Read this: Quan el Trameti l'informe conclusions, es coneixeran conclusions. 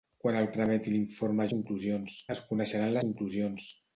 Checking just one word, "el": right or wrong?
right